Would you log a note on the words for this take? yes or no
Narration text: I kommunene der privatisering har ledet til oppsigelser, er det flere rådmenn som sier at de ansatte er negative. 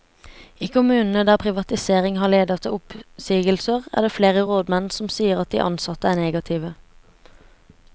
no